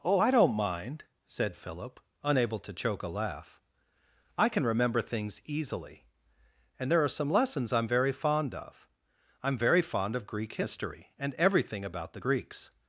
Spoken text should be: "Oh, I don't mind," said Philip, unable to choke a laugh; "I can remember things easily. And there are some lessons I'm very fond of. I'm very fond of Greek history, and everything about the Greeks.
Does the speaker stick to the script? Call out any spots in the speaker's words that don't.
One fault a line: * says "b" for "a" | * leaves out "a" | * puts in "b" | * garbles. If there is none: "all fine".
all fine